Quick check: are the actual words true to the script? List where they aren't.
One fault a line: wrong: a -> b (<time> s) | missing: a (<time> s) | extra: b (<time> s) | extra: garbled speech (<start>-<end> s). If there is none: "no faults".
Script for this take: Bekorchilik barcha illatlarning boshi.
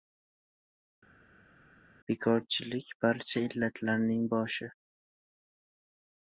no faults